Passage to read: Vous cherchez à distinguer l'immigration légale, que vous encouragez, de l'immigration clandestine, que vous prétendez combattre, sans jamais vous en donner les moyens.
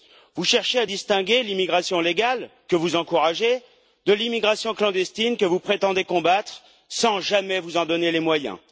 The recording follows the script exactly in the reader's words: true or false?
true